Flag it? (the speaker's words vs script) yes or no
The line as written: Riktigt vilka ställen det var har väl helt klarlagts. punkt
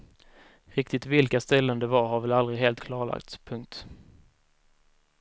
yes